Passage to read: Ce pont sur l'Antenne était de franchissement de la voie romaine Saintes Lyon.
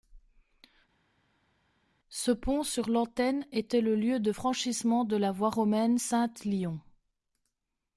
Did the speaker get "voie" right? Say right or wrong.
right